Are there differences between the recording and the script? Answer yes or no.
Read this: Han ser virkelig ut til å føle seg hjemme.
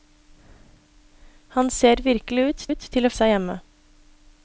yes